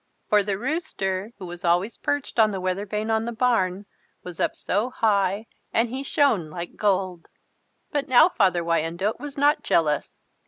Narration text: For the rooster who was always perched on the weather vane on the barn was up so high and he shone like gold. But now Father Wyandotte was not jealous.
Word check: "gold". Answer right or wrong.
right